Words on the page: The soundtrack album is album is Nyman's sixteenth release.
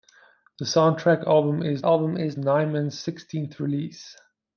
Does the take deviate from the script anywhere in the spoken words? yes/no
no